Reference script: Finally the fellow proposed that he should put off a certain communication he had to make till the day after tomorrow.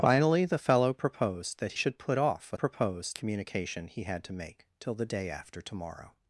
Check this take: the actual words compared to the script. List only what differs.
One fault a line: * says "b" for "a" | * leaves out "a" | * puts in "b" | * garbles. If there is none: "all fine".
* leaves out "he"
* says "proposed" for "certain"